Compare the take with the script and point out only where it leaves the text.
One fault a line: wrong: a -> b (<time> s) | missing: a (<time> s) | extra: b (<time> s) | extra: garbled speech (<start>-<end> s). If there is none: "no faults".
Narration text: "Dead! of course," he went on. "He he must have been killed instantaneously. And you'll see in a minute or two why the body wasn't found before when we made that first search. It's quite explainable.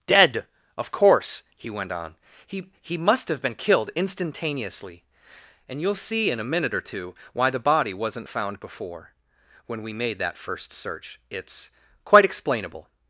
no faults